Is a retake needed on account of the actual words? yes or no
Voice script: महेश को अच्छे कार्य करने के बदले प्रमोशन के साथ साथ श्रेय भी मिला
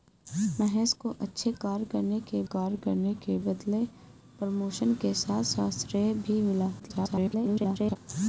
yes